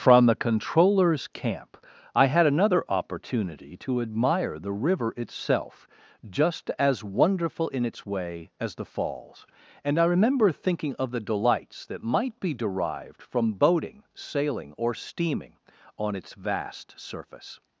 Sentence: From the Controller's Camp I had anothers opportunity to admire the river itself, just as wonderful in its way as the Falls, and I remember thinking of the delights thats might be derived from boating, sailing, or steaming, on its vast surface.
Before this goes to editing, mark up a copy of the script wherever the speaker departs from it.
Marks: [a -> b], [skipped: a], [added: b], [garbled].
From the Controller's Camp I had [anothers -> another] opportunity to admire the river itself, just as wonderful in its way as the Falls, and I remember thinking of the delights [thats -> that] might be derived from boating, sailing, or steaming, on its vast surface.